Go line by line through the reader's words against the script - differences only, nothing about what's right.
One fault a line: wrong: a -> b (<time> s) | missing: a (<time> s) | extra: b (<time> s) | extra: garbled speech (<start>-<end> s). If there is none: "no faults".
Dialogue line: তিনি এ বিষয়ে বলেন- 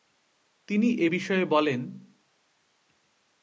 no faults